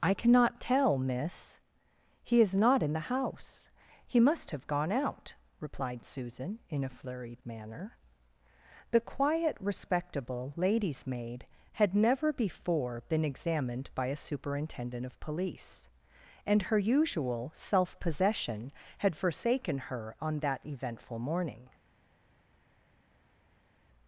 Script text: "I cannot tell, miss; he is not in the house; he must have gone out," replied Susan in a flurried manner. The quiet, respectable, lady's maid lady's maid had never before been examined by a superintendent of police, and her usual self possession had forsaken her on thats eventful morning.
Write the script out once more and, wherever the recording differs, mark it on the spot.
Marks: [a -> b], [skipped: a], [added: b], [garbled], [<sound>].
"I cannot tell, miss; he is not in the house; he must have gone out," replied Susan in a flurried manner. The quiet, respectable, lady's maid [skipped: lady's maid] had never before been examined by a superintendent of police, and her usual self possession had forsaken her on [thats -> that] eventful morning.